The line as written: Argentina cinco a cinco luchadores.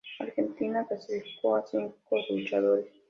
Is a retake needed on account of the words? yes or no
yes